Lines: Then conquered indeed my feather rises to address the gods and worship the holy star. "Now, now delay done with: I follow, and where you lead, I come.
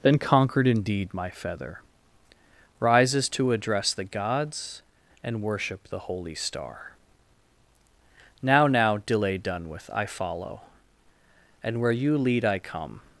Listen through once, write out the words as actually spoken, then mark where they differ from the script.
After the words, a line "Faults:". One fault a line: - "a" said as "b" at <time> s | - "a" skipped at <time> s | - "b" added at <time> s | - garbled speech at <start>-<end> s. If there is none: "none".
Then conquered indeed my feather rises to address the gods and worship the holy star. "Now, now delay done with: I follow, and where you lead, I come.
Faults:
none